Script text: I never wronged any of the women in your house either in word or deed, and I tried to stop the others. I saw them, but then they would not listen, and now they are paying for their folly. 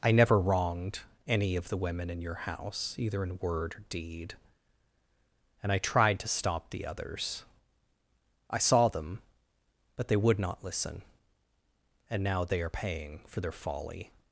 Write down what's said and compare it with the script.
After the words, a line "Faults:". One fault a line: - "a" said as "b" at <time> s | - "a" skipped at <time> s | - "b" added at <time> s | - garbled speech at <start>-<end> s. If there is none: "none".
I never wronged any of the women in your house either in word or deed, and I tried to stop the others. I saw them, but they would not listen, and now they are paying for their folly.
Faults:
- "then" skipped at 10.1 s